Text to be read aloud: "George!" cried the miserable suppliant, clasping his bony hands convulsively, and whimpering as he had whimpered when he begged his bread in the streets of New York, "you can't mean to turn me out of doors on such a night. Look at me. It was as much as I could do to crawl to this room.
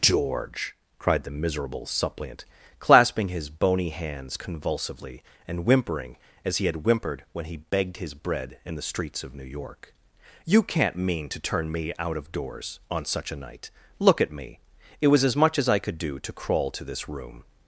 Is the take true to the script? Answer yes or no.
yes